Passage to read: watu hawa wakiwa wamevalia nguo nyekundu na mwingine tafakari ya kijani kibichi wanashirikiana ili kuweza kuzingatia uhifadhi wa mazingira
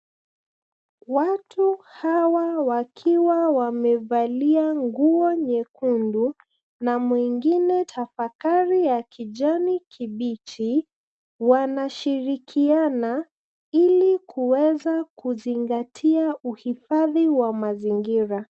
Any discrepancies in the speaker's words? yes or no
no